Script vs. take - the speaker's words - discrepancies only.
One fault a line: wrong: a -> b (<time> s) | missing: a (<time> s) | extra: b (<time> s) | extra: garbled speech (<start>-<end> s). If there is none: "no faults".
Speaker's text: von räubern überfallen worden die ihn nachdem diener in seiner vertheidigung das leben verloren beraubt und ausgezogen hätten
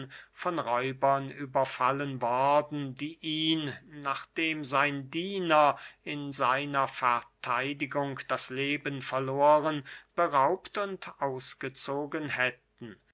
extra: sein (4.6 s)